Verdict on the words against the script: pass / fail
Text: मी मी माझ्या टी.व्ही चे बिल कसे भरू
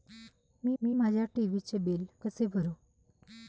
pass